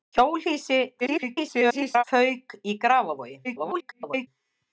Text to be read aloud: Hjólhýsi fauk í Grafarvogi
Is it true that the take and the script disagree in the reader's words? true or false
true